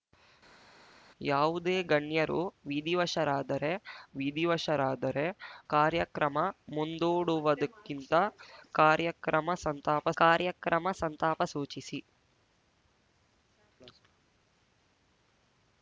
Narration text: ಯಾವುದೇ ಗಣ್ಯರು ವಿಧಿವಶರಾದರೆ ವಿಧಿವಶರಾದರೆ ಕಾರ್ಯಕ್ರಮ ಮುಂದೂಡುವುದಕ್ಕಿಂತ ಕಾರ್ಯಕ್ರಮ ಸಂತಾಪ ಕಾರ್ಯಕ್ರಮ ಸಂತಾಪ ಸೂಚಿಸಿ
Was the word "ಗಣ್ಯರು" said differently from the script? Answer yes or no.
no